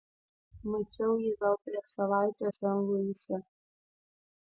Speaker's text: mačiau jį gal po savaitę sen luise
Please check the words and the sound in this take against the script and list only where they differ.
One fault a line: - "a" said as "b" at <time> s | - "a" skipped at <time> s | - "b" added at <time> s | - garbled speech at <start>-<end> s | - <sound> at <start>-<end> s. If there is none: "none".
- "po" said as "prieš" at 1.7 s